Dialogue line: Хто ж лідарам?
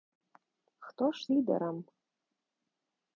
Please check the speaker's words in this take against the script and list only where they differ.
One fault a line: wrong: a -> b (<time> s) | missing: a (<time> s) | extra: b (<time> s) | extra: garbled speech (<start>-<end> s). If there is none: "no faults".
no faults